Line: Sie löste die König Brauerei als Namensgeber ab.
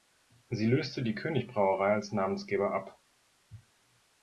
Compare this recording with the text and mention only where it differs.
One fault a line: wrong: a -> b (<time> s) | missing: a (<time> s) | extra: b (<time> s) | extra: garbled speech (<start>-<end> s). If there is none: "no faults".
no faults